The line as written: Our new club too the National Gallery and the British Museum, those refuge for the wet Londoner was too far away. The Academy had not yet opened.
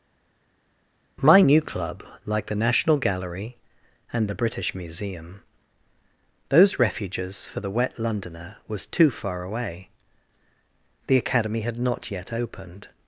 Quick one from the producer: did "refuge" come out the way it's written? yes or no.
no